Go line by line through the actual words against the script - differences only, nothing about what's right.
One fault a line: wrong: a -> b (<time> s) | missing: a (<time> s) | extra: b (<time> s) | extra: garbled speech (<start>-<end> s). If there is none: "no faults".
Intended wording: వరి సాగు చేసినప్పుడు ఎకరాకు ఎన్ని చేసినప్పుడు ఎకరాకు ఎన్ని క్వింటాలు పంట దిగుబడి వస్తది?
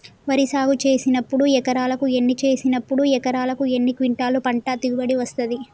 no faults